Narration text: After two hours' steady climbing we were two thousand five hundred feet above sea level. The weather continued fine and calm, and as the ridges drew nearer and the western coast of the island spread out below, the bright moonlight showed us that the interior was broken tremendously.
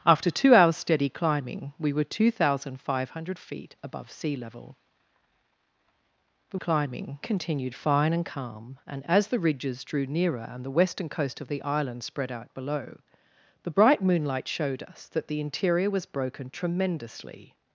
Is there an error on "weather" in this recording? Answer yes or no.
yes